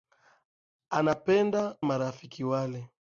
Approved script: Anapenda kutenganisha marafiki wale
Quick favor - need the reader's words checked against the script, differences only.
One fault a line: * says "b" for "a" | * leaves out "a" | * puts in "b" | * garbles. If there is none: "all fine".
* leaves out "kutenganisha"